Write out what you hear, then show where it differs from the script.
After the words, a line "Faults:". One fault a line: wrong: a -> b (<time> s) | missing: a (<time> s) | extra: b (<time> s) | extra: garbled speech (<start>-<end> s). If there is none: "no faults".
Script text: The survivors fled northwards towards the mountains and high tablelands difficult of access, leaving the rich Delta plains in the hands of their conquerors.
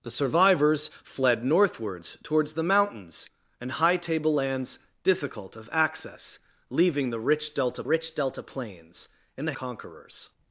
The survivors fled northwards towards the mountains and high tablelands difficult of access, leaving the rich Delta rich Delta plains in the conquerors.
Faults:
extra: rich Delta (7.8 s)
missing: hands of their (9.5 s)